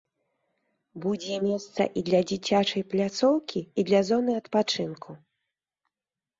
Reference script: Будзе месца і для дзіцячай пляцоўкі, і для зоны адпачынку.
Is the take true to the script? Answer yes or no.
yes